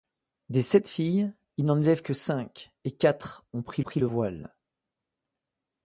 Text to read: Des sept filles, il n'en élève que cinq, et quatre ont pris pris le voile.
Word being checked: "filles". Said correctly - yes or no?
yes